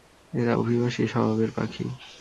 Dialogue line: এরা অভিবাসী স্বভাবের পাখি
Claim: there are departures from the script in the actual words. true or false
false